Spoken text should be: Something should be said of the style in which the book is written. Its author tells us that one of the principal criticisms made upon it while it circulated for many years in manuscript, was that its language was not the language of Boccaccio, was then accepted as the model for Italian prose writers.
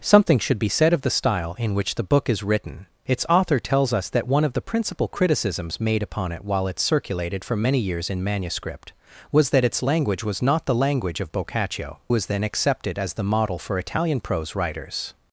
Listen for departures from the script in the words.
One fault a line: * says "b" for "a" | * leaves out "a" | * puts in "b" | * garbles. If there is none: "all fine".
all fine